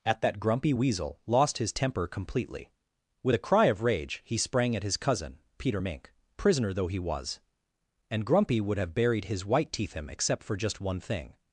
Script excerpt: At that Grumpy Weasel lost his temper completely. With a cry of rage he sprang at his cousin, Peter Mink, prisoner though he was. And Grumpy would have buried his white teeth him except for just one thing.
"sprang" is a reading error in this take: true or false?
false